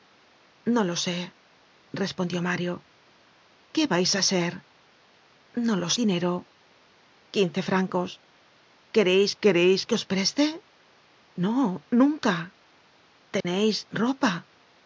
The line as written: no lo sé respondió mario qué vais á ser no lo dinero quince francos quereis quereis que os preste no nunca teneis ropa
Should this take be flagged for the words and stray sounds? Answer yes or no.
yes